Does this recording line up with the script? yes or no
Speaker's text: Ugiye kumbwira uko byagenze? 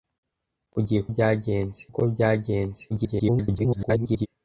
no